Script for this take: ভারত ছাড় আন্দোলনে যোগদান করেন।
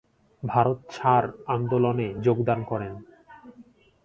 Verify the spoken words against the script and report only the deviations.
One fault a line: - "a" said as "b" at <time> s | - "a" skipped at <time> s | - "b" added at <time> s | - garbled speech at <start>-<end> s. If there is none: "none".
none